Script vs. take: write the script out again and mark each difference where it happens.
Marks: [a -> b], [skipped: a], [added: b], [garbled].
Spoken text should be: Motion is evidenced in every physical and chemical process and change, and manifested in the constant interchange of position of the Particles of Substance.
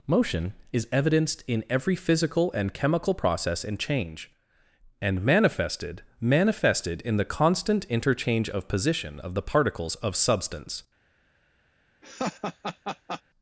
Motion is evidenced in every physical and chemical process and change, and manifested [added: manifested] in the constant interchange of position of the Particles of Substance.